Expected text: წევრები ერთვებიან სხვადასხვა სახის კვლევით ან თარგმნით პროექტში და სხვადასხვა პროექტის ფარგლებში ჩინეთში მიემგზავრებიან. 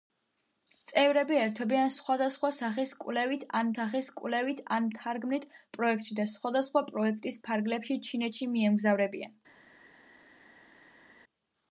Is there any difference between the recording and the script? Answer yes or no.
yes